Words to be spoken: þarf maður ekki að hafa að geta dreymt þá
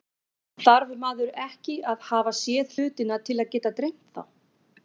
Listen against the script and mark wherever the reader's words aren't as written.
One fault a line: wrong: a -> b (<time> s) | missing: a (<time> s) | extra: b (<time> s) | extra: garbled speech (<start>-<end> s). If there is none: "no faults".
extra: séð hlutina til (2.4 s)